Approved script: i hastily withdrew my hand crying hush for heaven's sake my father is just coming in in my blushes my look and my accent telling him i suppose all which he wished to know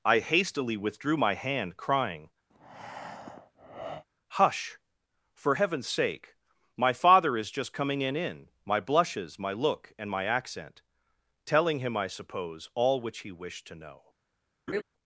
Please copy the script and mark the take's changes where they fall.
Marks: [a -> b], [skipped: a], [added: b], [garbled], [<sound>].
i hastily withdrew my hand crying [breath] hush for heaven's sake my father is just coming in in my blushes my look and my accent telling him i suppose all which he wished to know [laugh]